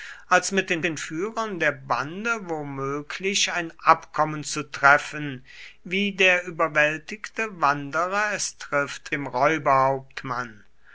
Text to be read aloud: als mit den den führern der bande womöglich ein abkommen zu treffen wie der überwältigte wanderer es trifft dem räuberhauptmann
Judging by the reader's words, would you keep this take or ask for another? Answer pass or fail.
pass